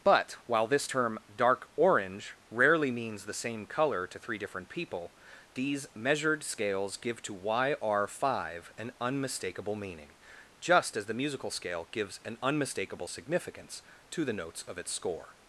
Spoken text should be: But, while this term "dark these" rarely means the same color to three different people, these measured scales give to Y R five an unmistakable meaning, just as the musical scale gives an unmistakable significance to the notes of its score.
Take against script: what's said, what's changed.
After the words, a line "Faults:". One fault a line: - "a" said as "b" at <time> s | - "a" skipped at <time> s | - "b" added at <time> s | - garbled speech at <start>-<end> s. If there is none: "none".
But, while this term "dark orange" rarely means the same color to three different people, these measured scales give to Y R five an unmistakable meaning, just as the musical scale gives an unmistakable significance to the notes of its score.
Faults:
- "these" said as "orange" at 1.8 s